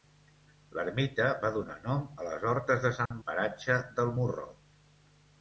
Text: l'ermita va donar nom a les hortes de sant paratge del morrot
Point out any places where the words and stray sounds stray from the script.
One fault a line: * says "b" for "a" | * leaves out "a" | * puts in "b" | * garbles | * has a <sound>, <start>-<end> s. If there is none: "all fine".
* has a dropout, 3.1-3.1 s